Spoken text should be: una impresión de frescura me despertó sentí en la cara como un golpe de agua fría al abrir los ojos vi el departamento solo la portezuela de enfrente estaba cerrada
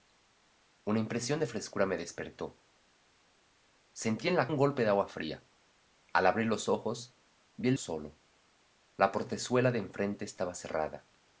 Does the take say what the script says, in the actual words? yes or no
no